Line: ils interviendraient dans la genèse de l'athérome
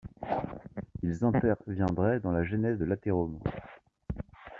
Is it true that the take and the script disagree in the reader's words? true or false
false